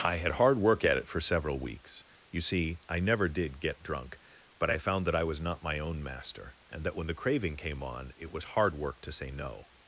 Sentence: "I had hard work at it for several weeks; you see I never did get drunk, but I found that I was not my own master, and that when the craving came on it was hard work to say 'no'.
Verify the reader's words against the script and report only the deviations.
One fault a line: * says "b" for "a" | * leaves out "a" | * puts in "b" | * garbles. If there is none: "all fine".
all fine